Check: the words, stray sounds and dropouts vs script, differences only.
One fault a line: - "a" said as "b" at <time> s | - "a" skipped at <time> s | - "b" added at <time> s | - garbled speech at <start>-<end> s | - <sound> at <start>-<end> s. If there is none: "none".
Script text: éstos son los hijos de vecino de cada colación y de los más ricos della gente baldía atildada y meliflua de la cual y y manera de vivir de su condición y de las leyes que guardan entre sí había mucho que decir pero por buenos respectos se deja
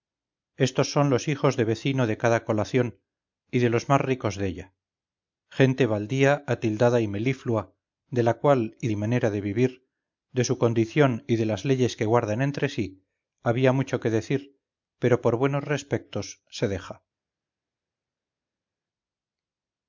none